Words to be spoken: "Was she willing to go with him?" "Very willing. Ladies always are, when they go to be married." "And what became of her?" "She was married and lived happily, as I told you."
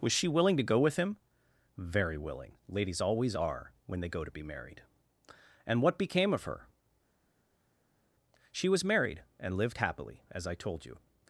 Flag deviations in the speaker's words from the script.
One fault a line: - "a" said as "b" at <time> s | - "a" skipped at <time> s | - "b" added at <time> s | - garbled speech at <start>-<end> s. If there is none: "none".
none